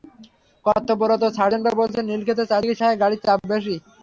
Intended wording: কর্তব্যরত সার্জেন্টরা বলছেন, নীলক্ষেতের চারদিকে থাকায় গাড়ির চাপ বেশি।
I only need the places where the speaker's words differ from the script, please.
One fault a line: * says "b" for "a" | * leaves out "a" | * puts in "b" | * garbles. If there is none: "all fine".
all fine